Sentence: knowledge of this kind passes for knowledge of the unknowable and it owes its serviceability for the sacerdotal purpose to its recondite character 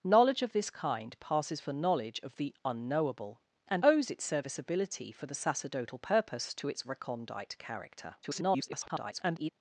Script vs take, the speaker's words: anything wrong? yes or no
yes